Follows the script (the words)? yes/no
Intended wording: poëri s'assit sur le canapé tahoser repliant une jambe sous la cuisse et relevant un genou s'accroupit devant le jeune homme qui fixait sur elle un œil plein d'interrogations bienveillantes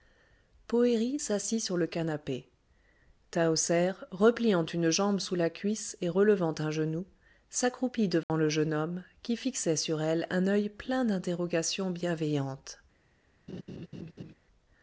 yes